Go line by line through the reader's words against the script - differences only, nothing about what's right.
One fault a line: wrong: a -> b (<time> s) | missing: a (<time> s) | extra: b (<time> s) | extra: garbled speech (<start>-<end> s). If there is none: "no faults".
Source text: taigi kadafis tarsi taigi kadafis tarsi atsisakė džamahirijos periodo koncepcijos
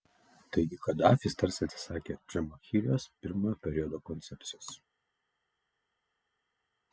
missing: taigi kadafis tarsi (1.7 s)
extra: pirmojo (3.3 s)